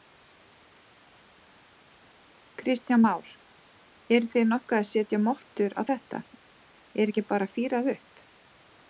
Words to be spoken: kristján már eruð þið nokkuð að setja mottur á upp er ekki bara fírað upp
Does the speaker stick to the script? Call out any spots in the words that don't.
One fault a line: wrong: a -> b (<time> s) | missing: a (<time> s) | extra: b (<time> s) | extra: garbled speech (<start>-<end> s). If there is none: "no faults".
wrong: upp -> þetta (5.9 s)